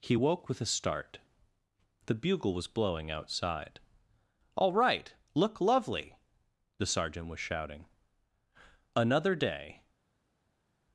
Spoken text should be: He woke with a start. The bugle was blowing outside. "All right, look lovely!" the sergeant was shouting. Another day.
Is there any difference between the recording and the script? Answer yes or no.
no